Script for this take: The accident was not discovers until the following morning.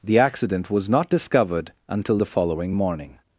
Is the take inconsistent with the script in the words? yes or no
yes